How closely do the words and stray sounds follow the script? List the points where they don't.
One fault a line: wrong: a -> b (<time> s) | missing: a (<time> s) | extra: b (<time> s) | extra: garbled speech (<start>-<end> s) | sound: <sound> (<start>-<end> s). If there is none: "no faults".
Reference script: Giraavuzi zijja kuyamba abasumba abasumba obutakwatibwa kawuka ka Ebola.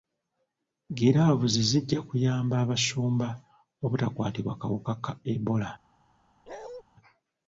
missing: abasumba (3.3 s)
sound: bark (6.5-6.8 s)